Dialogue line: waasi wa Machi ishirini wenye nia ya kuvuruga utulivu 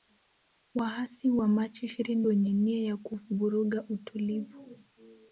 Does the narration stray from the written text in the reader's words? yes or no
no